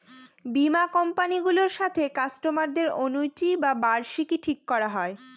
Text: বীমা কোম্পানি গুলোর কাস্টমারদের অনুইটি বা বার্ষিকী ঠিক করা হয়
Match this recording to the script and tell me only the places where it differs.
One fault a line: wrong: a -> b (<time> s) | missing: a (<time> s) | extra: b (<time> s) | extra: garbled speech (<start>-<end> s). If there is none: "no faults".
extra: সাথে (1.8 s)